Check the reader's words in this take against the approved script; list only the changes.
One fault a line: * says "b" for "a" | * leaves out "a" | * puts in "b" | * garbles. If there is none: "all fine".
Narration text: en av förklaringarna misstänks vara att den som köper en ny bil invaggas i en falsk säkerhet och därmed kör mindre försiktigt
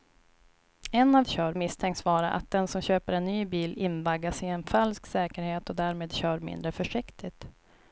* says "kör" for "förklaringarna"